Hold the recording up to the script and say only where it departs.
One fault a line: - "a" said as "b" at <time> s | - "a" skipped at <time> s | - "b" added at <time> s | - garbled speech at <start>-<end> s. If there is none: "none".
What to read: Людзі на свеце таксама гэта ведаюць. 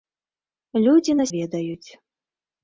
- "свеце таксама гэта" skipped at 1.2 s